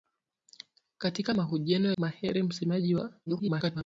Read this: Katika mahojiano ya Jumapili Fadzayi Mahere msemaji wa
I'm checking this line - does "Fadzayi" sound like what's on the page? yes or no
no